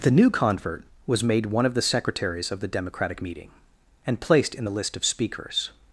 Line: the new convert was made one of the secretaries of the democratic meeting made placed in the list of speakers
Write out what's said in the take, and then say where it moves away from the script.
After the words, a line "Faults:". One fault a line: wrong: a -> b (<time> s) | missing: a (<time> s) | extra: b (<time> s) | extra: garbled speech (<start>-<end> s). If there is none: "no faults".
the new convert was made one of the secretaries of the democratic meeting and placed in the list of speakers
Faults:
wrong: made -> and (4.0 s)